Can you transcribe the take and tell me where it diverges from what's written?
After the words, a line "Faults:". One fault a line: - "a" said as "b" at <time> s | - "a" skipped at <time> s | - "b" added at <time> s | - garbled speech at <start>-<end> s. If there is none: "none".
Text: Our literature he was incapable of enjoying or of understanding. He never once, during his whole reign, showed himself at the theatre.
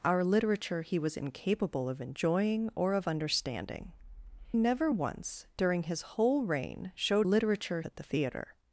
Our literature he was incapable of enjoying or of understanding. Never once, during his whole reign, showed literature at the theatre.
Faults:
- "He" skipped at 3.9 s
- "himself" said as "literature" at 7.2 s